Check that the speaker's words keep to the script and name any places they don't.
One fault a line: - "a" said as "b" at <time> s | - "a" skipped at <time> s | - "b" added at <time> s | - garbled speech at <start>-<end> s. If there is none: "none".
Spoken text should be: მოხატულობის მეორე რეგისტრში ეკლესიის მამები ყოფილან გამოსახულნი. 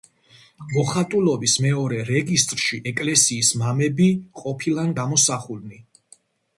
none